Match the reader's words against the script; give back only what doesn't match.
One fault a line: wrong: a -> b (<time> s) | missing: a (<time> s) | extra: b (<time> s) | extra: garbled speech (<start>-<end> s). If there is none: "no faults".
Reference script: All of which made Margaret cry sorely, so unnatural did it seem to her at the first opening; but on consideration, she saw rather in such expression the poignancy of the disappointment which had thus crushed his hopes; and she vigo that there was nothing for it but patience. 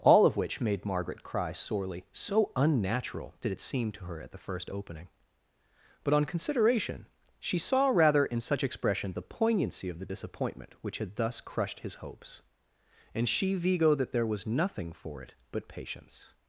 no faults